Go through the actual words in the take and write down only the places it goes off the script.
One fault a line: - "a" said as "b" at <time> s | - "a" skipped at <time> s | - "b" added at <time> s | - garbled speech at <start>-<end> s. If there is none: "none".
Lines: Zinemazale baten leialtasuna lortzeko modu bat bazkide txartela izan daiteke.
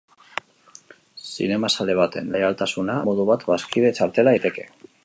- "lortzeko" skipped at 3.0 s
- "izan" skipped at 4.4 s